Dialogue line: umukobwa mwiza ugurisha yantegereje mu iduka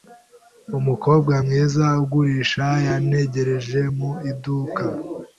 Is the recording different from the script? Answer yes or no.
no